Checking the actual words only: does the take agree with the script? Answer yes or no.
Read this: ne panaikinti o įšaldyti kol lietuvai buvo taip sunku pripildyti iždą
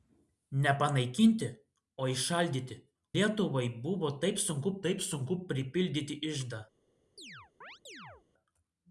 no